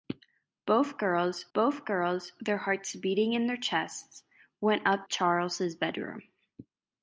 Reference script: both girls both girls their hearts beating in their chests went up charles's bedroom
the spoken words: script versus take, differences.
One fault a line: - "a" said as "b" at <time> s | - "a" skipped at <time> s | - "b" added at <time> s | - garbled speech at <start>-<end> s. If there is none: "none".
none